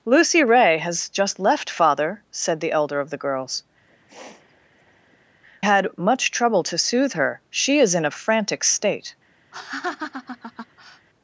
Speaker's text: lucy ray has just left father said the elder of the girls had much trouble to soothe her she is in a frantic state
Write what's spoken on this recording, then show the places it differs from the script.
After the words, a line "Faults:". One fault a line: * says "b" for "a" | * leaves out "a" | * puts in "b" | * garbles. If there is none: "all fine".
lucy ray has just left father said the elder of the girls had much trouble to soothe her she is in a frantic state
Faults:
all fine